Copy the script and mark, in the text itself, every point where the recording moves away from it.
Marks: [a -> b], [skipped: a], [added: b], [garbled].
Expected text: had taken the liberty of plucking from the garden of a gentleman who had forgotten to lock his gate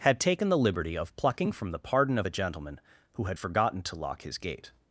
had taken the liberty of plucking from the [garden -> pardon] of a gentleman who had forgotten to lock his gate